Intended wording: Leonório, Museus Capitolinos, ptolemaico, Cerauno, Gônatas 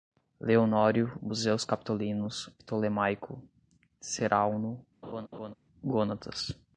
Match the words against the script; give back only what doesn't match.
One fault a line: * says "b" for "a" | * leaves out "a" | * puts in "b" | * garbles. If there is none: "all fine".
all fine